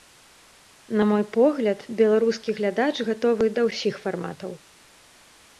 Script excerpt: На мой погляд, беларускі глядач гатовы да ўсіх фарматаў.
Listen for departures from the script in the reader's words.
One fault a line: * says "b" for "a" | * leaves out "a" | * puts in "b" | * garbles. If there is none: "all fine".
all fine